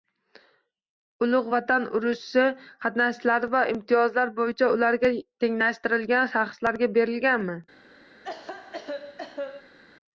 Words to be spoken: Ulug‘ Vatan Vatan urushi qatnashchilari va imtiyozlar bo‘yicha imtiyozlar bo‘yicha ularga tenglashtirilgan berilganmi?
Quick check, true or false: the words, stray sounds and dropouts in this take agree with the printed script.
false